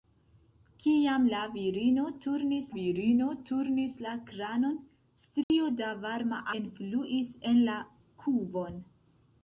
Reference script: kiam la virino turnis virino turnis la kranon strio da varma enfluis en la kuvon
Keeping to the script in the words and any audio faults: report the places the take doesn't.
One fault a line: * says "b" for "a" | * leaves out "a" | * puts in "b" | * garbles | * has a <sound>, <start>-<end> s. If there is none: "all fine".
* has a dropout, 5.4-5.5 s